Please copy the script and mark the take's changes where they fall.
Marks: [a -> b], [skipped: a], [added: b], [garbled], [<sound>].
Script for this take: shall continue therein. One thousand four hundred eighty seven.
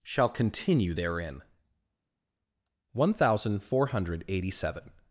shall continue therein. One thousand four hundred eighty seven.